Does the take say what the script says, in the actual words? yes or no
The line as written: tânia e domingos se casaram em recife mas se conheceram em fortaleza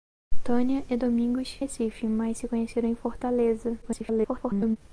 no